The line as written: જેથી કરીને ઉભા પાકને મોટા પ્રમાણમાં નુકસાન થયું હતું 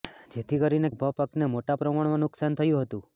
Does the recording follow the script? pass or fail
pass